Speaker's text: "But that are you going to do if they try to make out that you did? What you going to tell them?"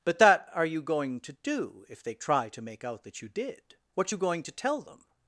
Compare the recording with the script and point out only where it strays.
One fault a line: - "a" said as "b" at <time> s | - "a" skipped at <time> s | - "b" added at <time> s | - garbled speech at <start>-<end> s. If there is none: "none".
none